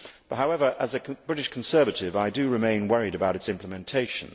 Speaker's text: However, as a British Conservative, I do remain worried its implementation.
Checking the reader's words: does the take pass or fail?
fail